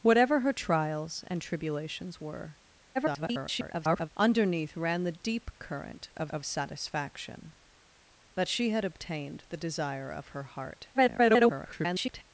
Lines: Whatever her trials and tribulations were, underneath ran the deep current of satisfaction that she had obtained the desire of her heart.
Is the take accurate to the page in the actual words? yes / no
no